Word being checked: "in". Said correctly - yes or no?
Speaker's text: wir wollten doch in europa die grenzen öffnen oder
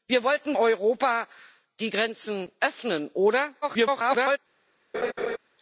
no